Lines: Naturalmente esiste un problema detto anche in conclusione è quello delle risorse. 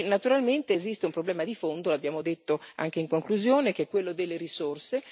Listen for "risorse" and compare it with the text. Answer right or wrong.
right